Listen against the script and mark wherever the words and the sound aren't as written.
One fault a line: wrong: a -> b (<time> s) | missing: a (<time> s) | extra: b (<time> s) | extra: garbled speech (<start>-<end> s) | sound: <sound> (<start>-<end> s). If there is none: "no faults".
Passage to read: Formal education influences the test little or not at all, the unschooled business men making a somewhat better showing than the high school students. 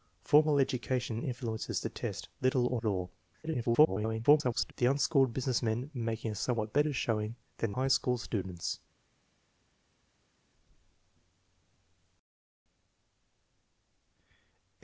missing: not (2.8 s)
extra: garbled speech (3.4-4.7 s)
missing: the (7.7 s)